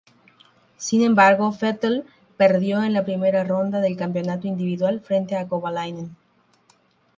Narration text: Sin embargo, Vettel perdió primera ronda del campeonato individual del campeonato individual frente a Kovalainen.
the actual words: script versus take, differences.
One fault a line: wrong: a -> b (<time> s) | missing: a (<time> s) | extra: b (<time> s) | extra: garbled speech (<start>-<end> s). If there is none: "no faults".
extra: en la (2.8 s)
missing: del campeonato individual (5.0 s)